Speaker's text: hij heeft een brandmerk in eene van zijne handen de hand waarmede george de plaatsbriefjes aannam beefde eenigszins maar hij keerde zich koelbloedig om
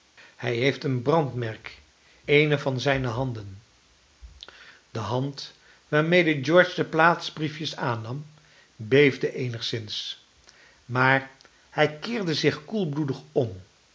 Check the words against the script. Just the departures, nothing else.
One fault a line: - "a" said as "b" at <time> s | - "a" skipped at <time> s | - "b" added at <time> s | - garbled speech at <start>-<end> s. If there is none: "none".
- "in" skipped at 1.8 s